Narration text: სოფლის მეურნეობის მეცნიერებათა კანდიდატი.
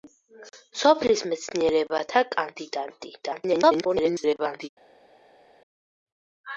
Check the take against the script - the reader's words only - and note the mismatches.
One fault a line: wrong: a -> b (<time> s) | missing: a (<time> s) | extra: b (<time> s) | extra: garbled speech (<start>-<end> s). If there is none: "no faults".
missing: მეურნეობის (1.2 s)
extra: garbled speech (3.2-4.7 s)